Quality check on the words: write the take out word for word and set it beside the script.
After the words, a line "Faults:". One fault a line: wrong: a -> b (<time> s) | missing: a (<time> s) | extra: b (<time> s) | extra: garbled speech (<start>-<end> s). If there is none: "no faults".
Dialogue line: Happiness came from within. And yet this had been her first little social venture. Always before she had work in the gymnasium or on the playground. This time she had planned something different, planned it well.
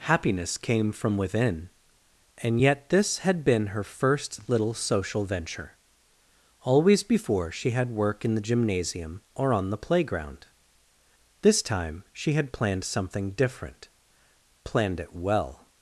Happiness came from within. And yet this had been her first little social venture. Always before she had work in the gymnasium or on the playground. This time she had planned something different, planned it well.
Faults:
no faults